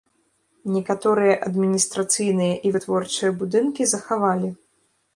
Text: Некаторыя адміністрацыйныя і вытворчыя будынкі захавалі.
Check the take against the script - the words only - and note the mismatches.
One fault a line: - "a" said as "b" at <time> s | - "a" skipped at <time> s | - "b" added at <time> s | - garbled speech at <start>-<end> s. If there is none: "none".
none